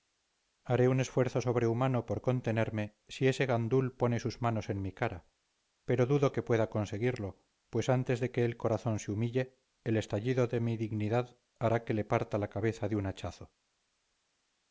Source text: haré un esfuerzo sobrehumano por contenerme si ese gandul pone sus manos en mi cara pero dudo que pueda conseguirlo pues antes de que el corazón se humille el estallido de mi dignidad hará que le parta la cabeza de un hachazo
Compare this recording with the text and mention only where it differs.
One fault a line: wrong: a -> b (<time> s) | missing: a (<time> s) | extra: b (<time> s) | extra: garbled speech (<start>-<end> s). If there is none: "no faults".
no faults